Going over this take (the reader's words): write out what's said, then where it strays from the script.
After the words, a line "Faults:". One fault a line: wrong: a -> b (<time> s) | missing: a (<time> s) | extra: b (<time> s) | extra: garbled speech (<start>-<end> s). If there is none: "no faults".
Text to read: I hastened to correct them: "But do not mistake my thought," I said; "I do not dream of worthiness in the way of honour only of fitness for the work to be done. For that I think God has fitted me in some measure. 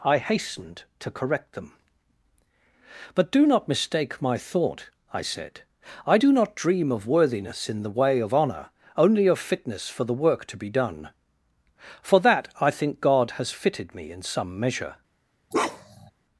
I hastened to correct them: "But do not mistake my thought," I said; "I do not dream of worthiness in the way of honour only of fitness for the work to be done. For that I think God has fitted me in some measure.
Faults:
no faults